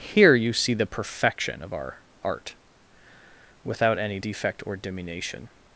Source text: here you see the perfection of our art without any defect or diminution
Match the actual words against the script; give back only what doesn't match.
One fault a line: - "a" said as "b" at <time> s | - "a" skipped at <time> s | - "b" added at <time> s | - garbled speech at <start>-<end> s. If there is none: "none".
none